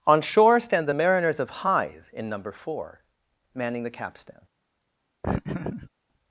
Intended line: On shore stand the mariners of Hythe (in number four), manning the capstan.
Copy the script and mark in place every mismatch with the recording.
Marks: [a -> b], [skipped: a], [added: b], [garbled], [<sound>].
On shore stand the mariners of Hythe (in number four), manning the capstan. [laugh]